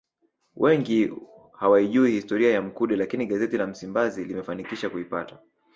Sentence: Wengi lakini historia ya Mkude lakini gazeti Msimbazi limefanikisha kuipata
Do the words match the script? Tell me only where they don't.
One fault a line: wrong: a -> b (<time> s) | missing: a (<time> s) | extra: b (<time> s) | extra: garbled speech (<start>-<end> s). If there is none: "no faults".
wrong: lakini -> hawaijui (1.5 s)
extra: la (3.6 s)